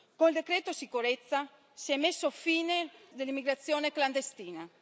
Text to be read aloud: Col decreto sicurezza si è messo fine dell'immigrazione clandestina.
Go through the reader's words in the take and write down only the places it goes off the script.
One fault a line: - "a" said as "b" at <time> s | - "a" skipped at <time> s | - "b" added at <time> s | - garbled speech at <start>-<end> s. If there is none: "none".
none